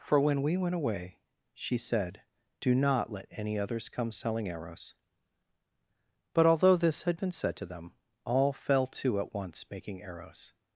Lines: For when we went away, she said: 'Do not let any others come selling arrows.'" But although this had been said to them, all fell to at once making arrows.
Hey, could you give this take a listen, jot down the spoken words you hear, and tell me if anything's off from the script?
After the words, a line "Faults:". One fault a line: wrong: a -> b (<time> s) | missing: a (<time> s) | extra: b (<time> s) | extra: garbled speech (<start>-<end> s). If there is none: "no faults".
For when we went away, she said: 'Do not let any others come selling arrows.'" But although this had been said to them, all fell to at once making arrows.
Faults:
no faults